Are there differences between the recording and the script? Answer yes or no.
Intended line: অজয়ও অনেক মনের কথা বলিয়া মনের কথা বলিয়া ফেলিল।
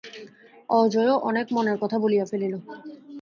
yes